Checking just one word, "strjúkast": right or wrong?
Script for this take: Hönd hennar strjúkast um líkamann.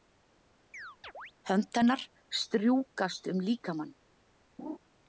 right